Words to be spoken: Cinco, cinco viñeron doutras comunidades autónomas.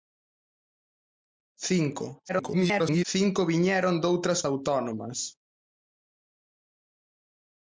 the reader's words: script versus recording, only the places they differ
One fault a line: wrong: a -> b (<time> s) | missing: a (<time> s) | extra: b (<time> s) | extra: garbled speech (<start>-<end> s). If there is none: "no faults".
extra: garbled speech (2.3-3.0 s)
missing: comunidades (4.4 s)